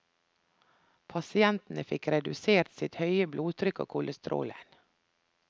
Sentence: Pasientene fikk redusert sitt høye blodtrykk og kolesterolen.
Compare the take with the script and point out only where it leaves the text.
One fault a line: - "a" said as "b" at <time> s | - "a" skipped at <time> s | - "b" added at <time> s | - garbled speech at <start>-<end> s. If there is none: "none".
none